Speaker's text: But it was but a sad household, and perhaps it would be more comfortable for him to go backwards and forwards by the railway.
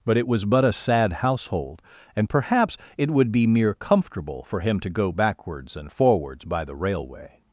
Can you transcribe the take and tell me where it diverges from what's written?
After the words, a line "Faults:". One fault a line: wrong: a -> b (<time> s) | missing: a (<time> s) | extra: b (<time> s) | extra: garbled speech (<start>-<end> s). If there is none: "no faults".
But it was but a sad household, and perhaps it would be mere comfortable for him to go backwards and forwards by the railway.
Faults:
wrong: more -> mere (3.5 s)